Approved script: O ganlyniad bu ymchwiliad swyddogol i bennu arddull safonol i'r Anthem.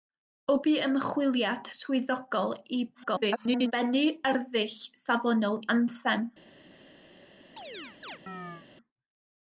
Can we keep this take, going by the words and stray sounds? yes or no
no